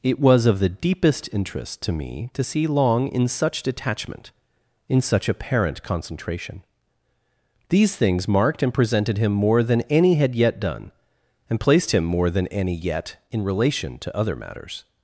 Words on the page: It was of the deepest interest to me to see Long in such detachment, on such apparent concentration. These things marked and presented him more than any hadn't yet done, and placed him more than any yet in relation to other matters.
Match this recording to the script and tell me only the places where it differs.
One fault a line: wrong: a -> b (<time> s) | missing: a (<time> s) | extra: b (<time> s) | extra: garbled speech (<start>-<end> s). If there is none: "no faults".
wrong: on -> in (4.9 s)
wrong: hadn't -> had (10.2 s)